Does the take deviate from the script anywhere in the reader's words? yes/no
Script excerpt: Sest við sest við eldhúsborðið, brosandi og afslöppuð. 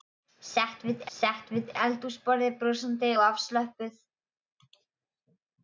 no